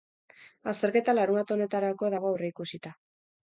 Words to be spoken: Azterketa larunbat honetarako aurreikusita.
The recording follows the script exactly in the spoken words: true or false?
false